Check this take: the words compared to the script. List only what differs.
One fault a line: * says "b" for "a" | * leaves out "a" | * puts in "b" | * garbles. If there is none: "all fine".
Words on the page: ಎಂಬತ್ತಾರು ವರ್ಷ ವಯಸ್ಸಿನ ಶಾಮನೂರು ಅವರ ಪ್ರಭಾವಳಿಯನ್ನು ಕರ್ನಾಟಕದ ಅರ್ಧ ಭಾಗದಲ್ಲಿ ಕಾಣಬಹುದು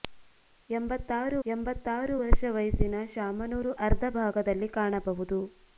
* puts in "ಎಂಬತ್ತಾರು"
* leaves out "ಅವರ ಪ್ರಭಾವಳಿಯನ್ನು ಕರ್ನಾಟಕದ"